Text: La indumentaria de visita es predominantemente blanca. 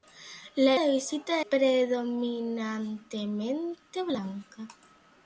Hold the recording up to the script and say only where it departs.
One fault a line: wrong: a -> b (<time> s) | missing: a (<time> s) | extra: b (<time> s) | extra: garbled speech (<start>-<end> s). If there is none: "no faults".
missing: indumentaria (0.8 s)
missing: es (1.5 s)